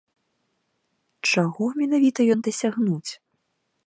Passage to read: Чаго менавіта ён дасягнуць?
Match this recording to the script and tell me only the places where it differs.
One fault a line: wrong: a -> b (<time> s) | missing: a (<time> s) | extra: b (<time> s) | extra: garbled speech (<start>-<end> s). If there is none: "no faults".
no faults